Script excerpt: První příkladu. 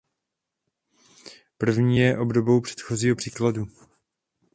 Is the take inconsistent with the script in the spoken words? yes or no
yes